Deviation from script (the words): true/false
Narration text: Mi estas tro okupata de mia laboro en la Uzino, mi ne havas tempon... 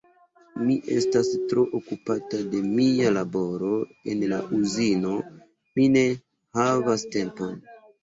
false